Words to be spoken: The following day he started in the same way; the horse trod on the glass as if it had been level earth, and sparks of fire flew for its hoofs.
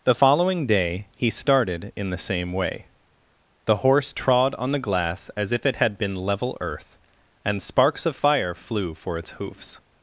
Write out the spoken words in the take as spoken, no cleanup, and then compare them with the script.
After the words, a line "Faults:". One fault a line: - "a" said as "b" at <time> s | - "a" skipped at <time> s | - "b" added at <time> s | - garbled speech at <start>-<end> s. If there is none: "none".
The following day he started in the same way; the horse trod on the glass as if it had been level earth, and sparks of fire flew for its hoofs.
Faults:
none